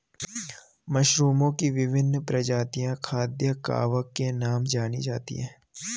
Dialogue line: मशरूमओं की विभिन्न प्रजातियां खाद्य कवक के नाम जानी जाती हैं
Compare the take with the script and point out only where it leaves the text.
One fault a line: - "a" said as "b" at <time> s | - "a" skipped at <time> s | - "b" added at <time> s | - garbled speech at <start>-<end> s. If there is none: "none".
none